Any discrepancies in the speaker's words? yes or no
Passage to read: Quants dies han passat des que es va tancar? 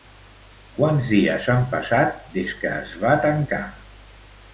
no